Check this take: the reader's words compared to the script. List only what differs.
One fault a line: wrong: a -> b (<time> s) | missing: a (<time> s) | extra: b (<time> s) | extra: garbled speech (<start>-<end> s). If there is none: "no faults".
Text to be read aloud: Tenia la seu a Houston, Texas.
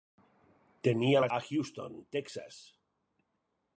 missing: seu (1.3 s)